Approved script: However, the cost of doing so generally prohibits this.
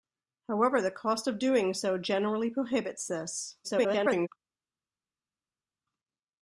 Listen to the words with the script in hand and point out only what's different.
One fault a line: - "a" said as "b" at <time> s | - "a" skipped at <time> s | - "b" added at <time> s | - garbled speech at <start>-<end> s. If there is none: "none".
- garbled speech at 3.6-4.3 s